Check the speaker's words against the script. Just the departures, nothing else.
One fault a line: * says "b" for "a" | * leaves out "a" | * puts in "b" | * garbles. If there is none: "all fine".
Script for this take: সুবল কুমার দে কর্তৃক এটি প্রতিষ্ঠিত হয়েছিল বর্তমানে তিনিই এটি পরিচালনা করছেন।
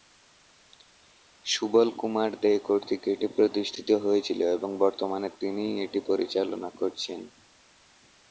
* puts in "এবং"